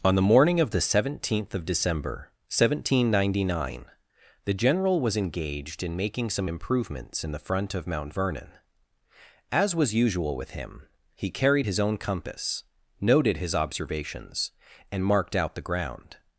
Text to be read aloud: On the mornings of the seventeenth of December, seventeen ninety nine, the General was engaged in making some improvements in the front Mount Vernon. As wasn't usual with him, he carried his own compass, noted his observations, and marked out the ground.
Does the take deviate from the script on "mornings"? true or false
true